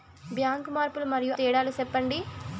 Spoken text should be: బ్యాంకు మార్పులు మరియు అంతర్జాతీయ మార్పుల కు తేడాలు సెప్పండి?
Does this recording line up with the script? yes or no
no